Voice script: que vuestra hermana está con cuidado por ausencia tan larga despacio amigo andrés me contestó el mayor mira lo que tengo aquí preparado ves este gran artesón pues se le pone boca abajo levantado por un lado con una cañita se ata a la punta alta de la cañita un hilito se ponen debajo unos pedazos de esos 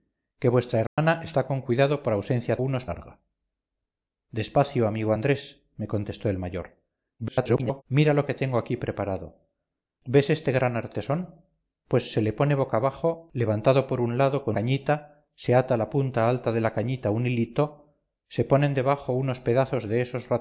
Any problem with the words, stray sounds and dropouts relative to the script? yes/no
yes